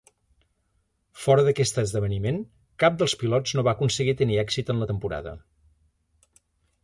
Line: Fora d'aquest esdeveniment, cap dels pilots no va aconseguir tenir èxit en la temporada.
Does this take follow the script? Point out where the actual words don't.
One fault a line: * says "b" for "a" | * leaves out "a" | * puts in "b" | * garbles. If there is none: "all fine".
all fine